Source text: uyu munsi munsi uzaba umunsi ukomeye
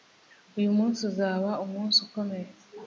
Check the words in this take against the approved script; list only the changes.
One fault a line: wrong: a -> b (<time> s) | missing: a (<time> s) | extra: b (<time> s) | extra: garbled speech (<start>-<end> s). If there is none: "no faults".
missing: munsi (1.0 s)